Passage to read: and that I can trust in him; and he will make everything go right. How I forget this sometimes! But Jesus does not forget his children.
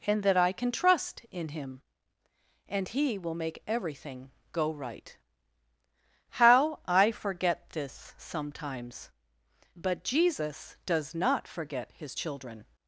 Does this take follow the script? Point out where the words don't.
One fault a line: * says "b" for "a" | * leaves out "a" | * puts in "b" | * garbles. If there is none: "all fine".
all fine